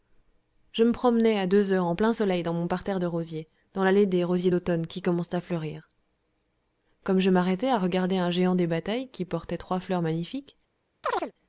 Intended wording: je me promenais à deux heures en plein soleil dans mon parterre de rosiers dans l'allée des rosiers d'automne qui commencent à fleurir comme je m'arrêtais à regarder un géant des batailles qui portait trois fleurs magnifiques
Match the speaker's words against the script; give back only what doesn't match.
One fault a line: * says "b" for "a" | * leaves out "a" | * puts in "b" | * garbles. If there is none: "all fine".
all fine